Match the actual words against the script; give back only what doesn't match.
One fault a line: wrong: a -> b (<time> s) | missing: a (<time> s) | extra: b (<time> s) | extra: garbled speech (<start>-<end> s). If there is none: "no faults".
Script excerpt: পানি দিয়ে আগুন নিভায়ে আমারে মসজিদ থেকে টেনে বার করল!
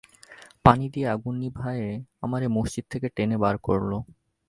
no faults